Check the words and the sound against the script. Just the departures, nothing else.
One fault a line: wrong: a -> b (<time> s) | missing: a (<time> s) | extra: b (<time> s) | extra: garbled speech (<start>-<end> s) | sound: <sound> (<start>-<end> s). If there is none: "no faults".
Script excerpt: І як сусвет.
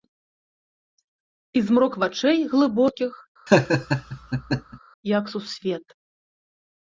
extra: змрок вачэй глыбокіх (1.7 s)
sound: laugh (3.5-4.8 s)